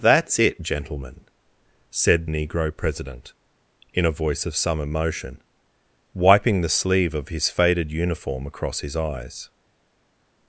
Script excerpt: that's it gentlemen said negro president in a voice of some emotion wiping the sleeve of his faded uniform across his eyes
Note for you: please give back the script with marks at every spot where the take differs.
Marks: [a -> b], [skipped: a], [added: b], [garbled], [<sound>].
that's it gentlemen said negro president in a voice of some emotion wiping the sleeve of his faded uniform across his eyes